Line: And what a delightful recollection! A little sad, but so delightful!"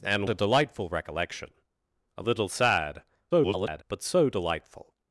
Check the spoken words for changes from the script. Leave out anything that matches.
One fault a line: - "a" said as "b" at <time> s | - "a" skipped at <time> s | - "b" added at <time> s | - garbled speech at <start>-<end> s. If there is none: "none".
- "what" skipped at 0.3 s
- garbled speech at 3.3-3.8 s